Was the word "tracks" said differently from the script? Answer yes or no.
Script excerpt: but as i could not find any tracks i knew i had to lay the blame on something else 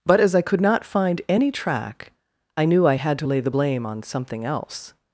yes